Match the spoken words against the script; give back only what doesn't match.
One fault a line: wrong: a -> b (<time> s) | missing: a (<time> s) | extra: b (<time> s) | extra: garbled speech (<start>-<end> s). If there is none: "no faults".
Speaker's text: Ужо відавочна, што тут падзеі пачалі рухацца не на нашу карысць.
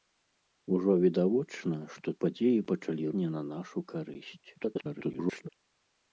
missing: тут (2.1 s)
missing: рухацца (3.0 s)
extra: garbled speech (4.5-5.5 s)